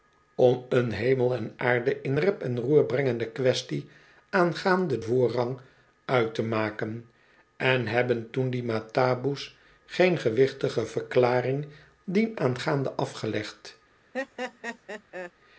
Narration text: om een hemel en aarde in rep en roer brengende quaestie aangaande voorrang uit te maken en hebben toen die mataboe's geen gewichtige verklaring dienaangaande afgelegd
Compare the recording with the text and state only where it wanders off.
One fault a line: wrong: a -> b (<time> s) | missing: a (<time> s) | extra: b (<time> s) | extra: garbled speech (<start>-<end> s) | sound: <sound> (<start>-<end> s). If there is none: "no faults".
sound: laugh (14.1-15.3 s)